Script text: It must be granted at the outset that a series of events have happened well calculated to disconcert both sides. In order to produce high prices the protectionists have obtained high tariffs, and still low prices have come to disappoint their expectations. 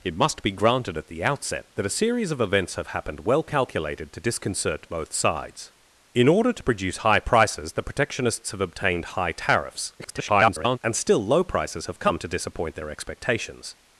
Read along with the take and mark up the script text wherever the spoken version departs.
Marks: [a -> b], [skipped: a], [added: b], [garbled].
It must be granted at the outset that a series of events have happened well calculated to disconcert both sides. In order to produce high prices the protectionists have obtained high tariffs, [garbled] and still low prices have come to disappoint their expectations.